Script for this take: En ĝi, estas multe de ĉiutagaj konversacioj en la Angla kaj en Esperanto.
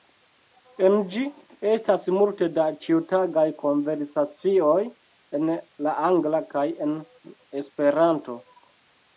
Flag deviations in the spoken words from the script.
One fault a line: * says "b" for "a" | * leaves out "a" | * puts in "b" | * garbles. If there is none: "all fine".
* says "da" for "de"